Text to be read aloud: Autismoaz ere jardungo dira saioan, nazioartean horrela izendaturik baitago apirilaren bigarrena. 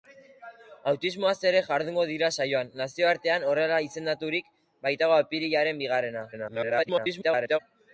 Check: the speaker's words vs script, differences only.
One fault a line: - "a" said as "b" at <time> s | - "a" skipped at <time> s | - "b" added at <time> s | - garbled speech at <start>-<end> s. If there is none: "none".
- garbled speech at 6.3-7.6 s